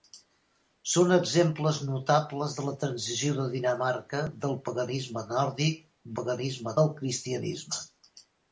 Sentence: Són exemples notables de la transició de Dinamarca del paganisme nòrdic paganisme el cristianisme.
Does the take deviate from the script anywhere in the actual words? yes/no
no